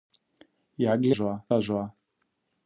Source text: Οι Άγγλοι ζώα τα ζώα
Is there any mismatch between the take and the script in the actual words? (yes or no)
no